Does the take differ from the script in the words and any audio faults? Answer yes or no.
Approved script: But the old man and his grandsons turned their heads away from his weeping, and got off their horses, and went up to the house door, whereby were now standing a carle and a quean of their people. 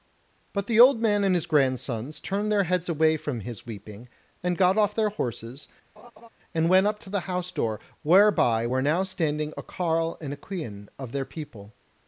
yes